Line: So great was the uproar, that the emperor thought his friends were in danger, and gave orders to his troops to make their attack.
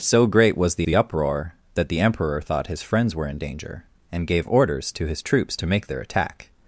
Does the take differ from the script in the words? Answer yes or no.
yes